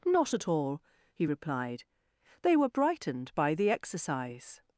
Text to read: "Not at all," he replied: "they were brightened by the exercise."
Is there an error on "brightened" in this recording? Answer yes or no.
no